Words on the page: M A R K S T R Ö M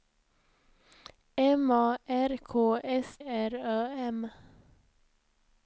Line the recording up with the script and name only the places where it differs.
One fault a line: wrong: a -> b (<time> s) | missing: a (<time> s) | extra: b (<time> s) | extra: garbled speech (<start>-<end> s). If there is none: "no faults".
missing: T (3.2 s)